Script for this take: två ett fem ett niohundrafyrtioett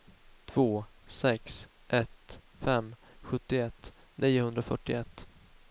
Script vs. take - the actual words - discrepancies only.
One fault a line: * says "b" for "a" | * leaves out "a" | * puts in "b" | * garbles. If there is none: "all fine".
* puts in "sex"
* says "sjuttioett" for "ett"